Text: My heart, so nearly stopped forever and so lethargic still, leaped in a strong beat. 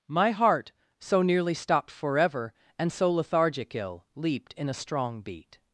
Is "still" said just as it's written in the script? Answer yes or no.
no